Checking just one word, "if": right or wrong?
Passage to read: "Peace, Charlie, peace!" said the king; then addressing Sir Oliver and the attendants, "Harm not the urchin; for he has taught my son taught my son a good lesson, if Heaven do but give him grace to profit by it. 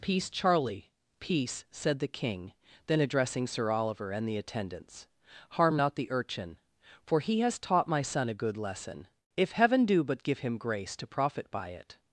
right